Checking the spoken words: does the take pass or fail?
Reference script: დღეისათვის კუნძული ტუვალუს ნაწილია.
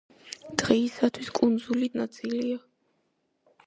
fail